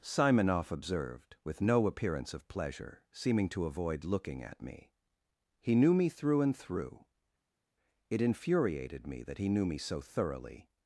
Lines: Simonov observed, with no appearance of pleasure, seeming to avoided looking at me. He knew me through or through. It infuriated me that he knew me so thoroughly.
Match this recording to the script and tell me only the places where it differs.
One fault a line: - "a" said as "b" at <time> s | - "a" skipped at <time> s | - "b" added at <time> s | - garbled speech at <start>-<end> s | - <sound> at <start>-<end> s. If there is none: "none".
- "avoided" said as "avoid" at 3.6 s
- "or" said as "and" at 6.4 s